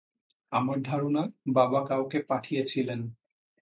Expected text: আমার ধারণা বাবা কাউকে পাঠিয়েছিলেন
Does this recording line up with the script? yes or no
yes